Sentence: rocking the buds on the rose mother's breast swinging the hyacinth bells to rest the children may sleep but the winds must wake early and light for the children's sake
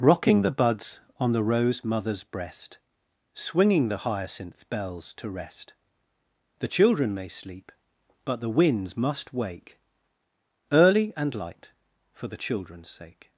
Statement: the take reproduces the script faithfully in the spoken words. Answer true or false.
true